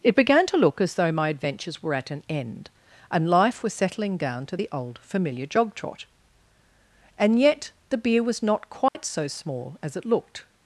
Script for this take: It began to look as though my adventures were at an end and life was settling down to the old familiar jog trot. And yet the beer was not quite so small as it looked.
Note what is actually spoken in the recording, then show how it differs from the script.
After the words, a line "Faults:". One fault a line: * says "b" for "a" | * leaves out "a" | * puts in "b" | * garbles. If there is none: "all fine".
It began to look as though my adventures were at an end and life was settling down to the old familiar jog trot. And yet the beer was not quite so small as it looked.
Faults:
all fine